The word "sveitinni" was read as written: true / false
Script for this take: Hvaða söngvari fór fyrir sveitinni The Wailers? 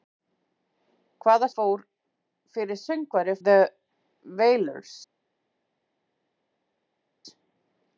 false